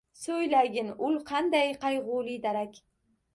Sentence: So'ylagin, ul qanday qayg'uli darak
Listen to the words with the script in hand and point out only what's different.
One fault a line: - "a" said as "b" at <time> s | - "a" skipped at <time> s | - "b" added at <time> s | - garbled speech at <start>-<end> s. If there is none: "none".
none